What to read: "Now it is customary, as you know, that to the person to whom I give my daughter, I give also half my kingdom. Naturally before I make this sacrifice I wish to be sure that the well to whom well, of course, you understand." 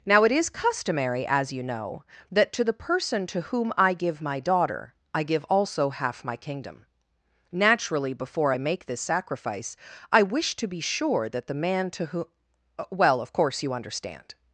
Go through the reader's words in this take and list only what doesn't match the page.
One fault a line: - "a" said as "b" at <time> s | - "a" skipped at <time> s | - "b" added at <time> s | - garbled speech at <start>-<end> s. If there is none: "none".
- "well" said as "man" at 11.5 s